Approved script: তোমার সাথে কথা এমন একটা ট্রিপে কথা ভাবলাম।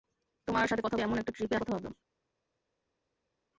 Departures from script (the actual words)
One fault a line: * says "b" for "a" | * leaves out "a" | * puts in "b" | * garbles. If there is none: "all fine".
all fine